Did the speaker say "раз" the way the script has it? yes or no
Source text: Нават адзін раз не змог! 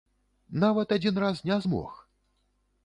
yes